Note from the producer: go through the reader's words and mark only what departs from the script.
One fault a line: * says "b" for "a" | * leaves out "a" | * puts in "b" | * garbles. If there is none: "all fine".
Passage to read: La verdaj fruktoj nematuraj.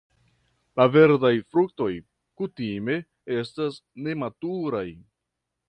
* puts in "kutime estas"